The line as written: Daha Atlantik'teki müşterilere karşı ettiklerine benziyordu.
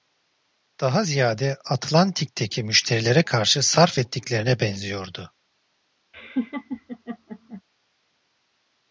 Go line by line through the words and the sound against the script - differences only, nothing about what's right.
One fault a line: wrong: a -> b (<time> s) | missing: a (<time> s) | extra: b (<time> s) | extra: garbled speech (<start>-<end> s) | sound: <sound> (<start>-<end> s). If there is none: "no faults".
extra: ziyade (1.0 s)
extra: sarf (3.6 s)
sound: laugh (6.1-7.6 s)